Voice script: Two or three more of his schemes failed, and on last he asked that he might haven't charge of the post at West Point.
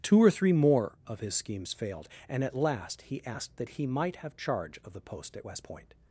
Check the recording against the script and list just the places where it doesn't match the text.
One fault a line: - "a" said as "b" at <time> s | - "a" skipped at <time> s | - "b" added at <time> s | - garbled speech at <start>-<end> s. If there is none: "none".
- "on" said as "at" at 2.4 s
- "haven't" said as "have" at 4.2 s